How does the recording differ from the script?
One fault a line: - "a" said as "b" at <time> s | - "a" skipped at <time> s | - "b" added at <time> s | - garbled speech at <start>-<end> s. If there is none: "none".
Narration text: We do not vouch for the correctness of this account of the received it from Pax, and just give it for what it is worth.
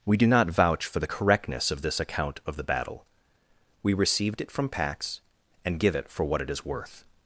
- "battle We" added at 2.6 s
- "just" skipped at 5.8 s